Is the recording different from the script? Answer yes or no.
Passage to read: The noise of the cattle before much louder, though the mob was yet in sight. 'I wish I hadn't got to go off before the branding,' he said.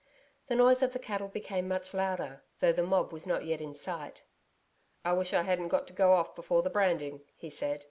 yes